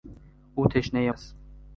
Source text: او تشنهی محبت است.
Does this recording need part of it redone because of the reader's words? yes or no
yes